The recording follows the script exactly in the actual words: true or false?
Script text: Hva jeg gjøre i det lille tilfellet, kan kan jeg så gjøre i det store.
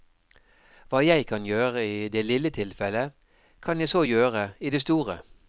false